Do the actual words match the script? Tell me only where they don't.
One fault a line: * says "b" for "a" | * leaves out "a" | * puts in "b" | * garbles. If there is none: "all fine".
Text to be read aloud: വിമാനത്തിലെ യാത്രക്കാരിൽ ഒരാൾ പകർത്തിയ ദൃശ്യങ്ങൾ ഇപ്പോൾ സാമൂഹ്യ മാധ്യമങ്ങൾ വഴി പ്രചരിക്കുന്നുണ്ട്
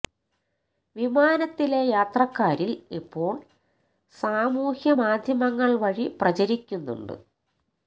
* leaves out "ഒരാൾ പകർത്തിയ ദൃശ്യങ്ങൾ"